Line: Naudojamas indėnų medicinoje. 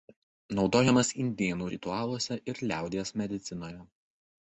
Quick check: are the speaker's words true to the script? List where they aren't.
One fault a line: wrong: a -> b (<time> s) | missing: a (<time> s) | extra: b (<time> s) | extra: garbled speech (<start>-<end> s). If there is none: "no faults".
extra: ritualuose ir liaudies (1.7 s)